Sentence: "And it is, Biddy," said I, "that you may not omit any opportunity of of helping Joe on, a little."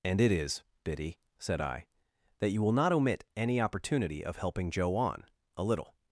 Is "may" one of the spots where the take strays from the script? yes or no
yes